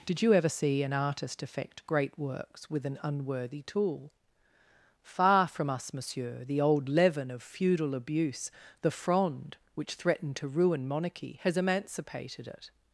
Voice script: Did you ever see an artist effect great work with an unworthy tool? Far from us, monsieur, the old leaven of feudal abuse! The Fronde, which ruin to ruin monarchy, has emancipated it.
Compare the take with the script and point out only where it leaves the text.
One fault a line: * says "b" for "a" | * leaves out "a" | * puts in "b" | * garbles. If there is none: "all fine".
* says "works" for "work"
* says "threatened" for "ruin"